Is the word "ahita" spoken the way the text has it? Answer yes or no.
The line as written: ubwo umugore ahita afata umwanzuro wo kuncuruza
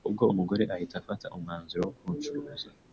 yes